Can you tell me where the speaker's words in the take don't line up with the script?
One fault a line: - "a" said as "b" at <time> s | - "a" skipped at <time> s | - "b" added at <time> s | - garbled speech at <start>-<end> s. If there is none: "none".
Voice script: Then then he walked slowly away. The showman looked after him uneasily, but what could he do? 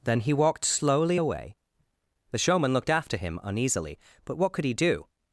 - "then" skipped at 0.2 s